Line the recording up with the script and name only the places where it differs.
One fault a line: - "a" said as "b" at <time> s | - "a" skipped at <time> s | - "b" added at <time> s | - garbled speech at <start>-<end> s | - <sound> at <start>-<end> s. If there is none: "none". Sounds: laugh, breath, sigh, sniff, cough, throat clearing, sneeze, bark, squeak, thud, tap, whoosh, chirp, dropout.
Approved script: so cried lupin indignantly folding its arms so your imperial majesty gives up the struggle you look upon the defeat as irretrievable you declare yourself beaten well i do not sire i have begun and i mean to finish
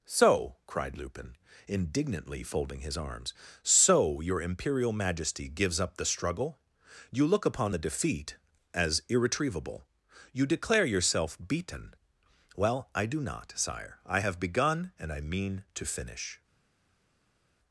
- "its" said as "his" at 2.8 s